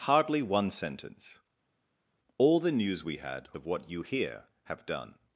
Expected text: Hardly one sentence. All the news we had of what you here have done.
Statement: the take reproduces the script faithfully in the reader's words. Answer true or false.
true